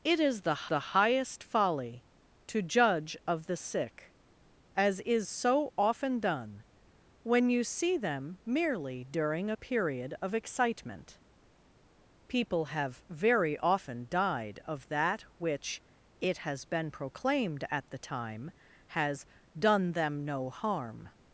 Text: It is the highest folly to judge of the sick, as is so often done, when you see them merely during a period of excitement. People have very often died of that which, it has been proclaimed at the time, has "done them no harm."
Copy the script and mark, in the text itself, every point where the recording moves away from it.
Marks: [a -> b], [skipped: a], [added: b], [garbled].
It is the [added: the] highest folly to judge of the sick, as is so often done, when you see them merely during a period of excitement. People have very often died of that which, it has been proclaimed at the time, has "done them no harm."